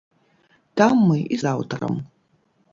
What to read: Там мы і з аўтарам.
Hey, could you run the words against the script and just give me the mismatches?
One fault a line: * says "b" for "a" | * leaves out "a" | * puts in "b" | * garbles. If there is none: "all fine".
all fine